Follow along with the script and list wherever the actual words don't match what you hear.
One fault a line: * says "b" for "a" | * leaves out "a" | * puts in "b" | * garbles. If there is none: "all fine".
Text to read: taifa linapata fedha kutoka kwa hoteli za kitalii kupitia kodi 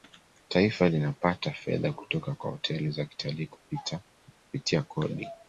all fine